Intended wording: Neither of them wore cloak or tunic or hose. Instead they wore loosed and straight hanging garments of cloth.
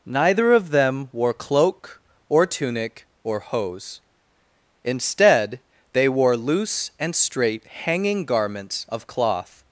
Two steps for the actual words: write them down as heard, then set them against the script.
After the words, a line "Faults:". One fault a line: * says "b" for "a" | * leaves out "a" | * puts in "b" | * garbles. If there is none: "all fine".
Neither of them wore cloak or tunic or hose. Instead they wore loose and straight hanging garments of cloth.
Faults:
* says "loose" for "loosed"